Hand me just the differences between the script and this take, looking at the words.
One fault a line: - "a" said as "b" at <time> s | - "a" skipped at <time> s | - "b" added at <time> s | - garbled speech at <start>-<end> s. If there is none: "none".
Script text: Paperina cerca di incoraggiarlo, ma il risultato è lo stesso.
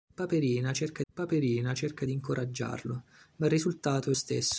- "paperina cerca" added at 1.1 s
- "lo" skipped at 4.1 s